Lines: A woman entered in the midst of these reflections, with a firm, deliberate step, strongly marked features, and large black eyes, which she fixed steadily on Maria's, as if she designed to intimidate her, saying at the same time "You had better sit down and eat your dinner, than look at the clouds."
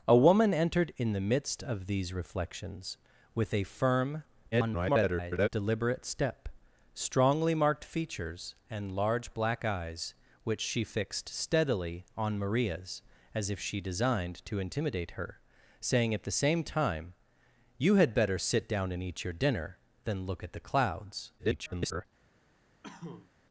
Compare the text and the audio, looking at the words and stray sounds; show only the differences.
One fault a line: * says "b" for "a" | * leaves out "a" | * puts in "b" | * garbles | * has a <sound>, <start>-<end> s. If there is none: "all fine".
* garbles
* garbles
* has a cough, 22.8-23.3 s